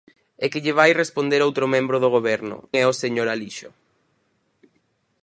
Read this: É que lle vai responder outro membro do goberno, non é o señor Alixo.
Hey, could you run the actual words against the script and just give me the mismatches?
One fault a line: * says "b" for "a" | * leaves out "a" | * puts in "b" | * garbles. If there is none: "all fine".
* leaves out "non"